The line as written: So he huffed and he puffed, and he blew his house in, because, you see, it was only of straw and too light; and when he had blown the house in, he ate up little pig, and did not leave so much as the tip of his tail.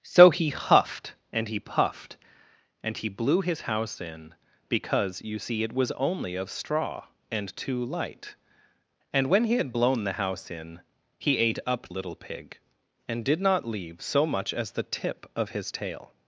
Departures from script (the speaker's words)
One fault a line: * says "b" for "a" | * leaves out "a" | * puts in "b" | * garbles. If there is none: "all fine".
all fine